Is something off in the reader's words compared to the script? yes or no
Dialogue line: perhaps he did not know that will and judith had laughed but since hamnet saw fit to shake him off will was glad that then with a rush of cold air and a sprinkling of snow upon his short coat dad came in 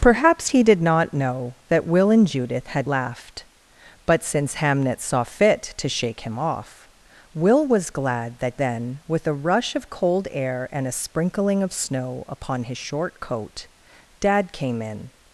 no